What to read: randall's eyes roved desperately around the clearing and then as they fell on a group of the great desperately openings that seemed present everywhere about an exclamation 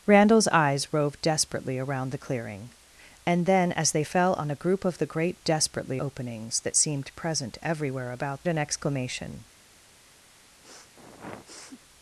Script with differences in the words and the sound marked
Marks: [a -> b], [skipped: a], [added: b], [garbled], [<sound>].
randall's eyes roved desperately around the clearing and then as they fell on a group of the great desperately openings that seemed present everywhere about an exclamation [sniff]